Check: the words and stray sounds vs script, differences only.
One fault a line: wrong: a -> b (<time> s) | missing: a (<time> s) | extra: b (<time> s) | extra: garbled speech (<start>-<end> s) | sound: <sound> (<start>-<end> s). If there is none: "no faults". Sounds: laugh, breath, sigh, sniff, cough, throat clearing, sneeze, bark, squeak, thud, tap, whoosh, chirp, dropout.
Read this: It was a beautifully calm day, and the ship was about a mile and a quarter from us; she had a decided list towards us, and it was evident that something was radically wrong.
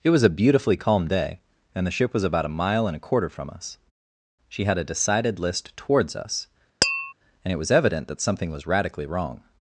sound: tap (6.8-7.1 s)